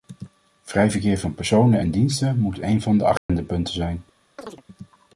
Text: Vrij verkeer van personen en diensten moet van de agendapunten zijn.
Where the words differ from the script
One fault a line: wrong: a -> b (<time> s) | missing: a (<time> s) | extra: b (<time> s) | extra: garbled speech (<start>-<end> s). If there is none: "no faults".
extra: een (2.6 s)